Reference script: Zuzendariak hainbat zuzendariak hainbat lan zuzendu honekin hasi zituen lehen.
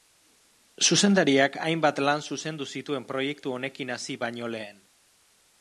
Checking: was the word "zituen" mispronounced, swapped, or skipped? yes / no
yes